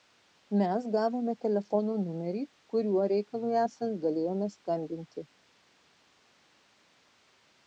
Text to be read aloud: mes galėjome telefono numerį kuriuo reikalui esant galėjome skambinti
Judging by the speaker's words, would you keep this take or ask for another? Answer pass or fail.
fail